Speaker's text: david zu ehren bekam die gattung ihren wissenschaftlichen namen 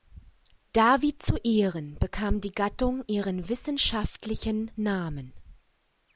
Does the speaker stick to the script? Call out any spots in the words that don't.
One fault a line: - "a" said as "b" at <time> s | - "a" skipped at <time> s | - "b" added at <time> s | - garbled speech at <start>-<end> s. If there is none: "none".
none